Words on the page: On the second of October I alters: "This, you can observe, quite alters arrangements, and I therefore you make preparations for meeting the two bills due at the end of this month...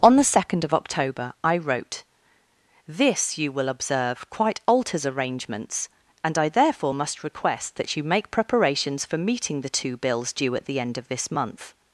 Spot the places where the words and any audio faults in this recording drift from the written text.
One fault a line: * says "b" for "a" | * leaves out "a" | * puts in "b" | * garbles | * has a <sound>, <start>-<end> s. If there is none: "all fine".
* says "wrote" for "alters"
* says "will" for "can"
* puts in "must request that"